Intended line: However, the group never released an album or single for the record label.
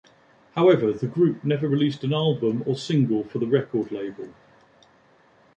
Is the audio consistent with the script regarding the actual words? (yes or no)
yes